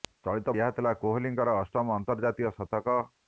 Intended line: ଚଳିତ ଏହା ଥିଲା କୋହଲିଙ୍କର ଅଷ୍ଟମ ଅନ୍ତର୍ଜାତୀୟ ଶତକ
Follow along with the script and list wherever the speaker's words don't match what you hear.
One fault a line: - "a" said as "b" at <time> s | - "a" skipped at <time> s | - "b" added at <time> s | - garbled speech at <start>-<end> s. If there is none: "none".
none